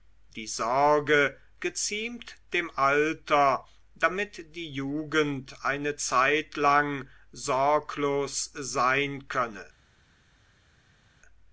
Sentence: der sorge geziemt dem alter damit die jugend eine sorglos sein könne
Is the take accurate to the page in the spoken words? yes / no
no